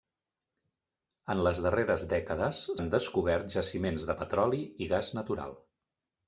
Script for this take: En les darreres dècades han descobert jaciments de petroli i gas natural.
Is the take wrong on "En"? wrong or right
right